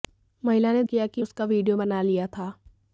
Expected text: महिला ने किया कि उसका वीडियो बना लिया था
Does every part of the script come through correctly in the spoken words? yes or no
yes